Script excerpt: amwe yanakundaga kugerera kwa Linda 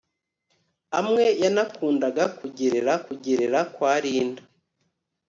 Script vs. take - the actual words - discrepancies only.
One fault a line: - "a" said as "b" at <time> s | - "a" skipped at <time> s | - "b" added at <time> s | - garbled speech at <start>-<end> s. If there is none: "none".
- "kugerera" added at 3.0 s